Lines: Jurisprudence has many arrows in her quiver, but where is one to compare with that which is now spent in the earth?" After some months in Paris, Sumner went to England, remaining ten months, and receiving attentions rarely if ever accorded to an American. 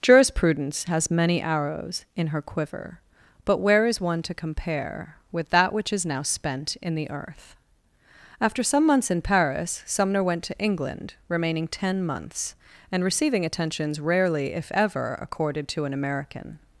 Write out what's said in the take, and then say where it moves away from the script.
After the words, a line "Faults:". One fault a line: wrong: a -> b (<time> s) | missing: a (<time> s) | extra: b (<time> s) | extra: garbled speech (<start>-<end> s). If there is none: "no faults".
Jurisprudence has many arrows in her quiver, but where is one to compare with that which is now spent in the earth?" After some months in Paris, Sumner went to England, remaining ten months, and receiving attentions rarely if ever accorded to an American.
Faults:
no faults